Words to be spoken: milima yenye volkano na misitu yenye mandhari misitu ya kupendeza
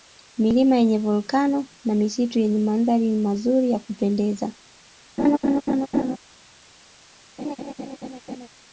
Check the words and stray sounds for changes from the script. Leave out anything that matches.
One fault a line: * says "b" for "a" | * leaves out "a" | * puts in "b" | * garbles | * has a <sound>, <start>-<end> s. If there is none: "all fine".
* says "mazuri" for "misitu"
* has a laugh, 5.2-6.2 s
* has a laugh, 7.4-8.5 s